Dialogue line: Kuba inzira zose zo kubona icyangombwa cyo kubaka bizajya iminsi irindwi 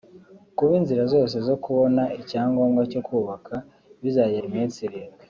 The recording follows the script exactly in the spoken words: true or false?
true